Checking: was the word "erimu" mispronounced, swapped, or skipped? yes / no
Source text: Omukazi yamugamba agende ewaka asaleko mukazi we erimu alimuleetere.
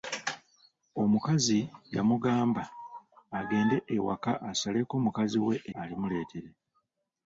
yes